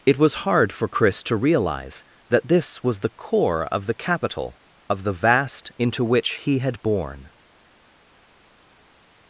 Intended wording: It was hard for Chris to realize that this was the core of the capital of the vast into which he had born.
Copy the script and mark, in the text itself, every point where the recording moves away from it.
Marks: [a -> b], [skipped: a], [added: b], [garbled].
It was hard for Chris to realize that this was the core of the capital of the vast into which he had born.